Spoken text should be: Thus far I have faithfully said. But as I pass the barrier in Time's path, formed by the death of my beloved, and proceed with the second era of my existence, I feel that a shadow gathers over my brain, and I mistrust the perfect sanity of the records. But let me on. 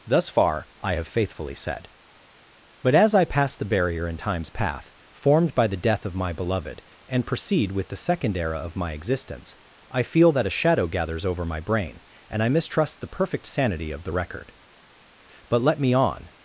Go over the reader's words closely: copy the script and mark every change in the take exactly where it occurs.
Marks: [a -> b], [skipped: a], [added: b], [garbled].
Thus far I have faithfully said. But as I pass the barrier in Time's path, formed by the death of my beloved, and proceed with the second era of my existence, I feel that a shadow gathers over my brain, and I mistrust the perfect sanity of the [records. -> record] But let me on.